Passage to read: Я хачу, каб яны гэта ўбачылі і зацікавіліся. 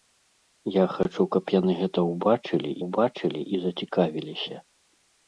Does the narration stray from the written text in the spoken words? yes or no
yes